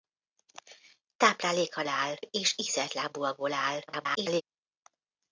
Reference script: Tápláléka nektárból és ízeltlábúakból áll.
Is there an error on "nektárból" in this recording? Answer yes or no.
yes